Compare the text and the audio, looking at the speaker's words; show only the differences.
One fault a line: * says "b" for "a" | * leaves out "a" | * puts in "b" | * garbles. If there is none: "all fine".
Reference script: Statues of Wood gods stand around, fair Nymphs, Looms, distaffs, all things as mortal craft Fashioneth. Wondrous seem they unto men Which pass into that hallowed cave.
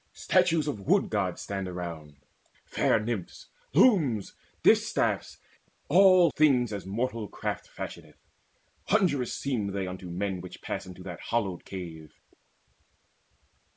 all fine